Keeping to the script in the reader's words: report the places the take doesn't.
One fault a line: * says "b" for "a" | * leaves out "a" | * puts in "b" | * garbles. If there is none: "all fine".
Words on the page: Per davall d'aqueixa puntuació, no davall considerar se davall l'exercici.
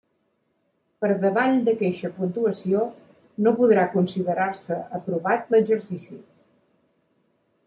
* says "podrà" for "davall"
* says "aprovat" for "davall"